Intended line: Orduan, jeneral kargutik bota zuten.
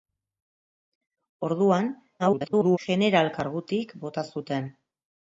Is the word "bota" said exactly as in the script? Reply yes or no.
yes